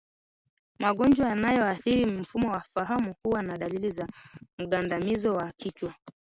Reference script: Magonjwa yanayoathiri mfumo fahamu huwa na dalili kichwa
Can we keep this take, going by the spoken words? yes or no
no